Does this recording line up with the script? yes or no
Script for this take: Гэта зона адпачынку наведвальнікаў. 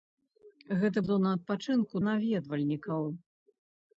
yes